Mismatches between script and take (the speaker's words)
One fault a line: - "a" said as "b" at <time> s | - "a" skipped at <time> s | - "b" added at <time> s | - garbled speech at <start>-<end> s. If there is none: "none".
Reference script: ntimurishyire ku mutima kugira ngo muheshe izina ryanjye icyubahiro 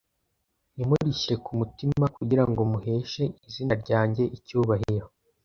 none